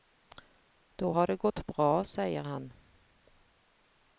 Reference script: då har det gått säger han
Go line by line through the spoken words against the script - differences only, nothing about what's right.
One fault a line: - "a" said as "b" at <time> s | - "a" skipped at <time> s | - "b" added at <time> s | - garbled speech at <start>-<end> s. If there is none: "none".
- "bra" added at 1.7 s